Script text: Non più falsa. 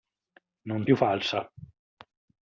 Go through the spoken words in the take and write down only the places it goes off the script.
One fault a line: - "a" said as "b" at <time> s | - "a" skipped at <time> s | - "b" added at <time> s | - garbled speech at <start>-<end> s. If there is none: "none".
none